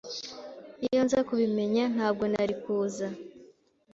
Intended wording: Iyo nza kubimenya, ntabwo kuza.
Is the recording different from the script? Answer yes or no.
yes